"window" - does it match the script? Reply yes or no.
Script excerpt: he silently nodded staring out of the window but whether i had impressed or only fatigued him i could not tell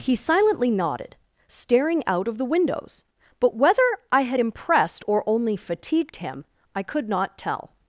no